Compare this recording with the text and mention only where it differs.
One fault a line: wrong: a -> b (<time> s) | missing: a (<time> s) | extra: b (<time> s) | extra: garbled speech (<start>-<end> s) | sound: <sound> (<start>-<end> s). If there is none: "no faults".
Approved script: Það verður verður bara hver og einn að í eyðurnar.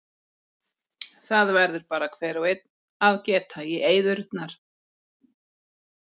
missing: verður (1.9 s)
extra: geta (3.3 s)